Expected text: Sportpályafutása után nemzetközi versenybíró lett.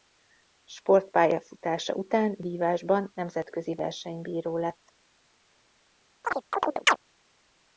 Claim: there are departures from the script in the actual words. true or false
true